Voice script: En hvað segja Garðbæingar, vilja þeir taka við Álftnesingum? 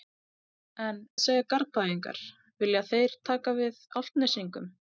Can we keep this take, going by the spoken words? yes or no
no